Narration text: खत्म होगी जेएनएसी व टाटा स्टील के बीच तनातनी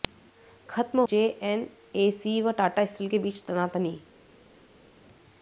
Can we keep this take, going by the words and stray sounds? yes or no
no